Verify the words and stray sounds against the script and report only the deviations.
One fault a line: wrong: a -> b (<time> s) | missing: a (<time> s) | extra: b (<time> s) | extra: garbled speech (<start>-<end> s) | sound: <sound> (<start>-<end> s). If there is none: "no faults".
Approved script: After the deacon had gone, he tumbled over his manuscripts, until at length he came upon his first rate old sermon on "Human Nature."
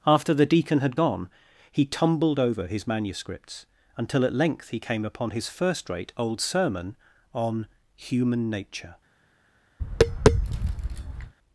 sound: tap (9.8-11.3 s)